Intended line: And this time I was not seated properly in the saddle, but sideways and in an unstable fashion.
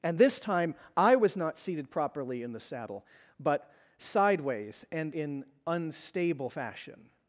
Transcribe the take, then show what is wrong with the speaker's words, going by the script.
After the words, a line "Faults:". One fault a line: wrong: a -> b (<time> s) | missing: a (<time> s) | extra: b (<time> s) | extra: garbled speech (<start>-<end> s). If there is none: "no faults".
And this time I was not seated properly in the saddle, but sideways and in unstable fashion.
Faults:
missing: an (5.5 s)